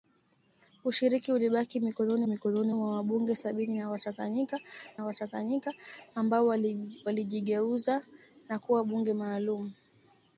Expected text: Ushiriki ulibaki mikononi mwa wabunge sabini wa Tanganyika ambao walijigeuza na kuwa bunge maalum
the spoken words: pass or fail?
fail